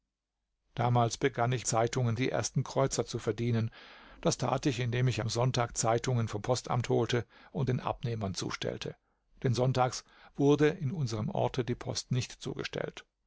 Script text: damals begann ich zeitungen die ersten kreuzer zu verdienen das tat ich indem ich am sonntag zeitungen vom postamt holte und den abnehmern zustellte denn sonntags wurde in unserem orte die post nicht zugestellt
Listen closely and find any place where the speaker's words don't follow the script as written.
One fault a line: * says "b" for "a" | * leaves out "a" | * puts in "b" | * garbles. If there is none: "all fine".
all fine